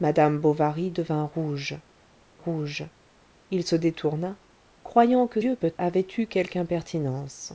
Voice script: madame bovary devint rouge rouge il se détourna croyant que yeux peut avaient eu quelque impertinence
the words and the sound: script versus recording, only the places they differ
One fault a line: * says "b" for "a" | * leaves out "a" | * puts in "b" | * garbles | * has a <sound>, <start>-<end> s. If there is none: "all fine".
all fine